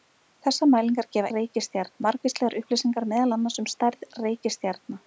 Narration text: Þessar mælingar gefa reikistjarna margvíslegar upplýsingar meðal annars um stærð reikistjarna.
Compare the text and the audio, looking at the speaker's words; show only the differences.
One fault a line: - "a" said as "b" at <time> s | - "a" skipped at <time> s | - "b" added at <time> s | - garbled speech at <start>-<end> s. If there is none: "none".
none